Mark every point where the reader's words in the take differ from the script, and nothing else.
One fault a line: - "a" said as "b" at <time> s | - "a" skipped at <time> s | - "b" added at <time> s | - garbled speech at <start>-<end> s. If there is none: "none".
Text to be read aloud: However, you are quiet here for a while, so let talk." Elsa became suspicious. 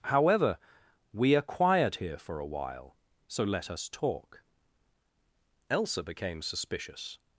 - "you" said as "we" at 1.1 s
- "us" added at 3.7 s